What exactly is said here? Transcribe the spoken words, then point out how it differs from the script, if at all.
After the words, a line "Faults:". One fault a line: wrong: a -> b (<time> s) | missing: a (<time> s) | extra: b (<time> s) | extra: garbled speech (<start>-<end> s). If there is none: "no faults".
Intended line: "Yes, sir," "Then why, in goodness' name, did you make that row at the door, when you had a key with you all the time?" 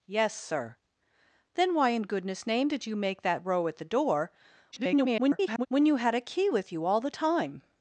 "Yes, sir," "Then why, in goodness' name, did you make that row at the door, [garbled] when you had a key with you all the time?"
Faults:
extra: garbled speech (4.7-5.7 s)